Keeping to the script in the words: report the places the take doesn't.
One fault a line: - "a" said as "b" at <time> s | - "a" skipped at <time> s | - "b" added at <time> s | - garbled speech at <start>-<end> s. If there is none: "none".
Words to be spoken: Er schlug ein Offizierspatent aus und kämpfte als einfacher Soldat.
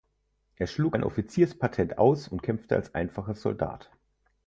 none